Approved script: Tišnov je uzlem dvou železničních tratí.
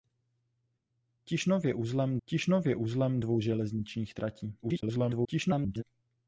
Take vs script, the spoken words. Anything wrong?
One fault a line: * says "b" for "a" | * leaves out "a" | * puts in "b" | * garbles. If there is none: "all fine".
* puts in "tišnov je uzlem"
* garbles